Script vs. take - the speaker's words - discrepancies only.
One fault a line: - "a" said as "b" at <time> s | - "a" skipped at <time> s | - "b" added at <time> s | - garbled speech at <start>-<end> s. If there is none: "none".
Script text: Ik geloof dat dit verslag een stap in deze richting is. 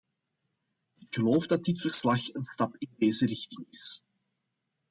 none